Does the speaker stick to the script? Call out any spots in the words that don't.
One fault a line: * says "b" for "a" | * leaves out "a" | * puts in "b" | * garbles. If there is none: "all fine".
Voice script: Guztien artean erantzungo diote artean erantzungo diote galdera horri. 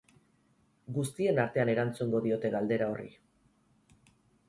* leaves out "artean erantzungo diote"